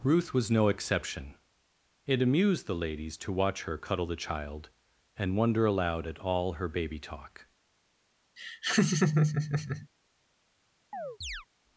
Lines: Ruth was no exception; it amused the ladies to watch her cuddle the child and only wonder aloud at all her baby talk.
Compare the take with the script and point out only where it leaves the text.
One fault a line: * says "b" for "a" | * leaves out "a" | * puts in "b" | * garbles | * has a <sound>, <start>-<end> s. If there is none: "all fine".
* leaves out "only"
* has a laugh, 8.4-9.9 s
* has a chirp, 10.9-11.5 s